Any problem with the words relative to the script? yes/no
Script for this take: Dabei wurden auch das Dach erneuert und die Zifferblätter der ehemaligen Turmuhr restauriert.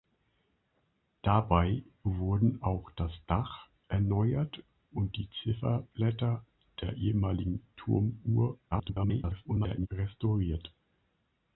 yes